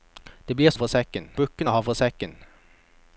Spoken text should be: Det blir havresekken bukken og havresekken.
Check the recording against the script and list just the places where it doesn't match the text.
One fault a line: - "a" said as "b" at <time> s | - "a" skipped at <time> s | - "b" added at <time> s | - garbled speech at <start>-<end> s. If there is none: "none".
none